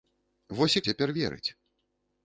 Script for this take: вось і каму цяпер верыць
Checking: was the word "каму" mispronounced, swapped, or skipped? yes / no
yes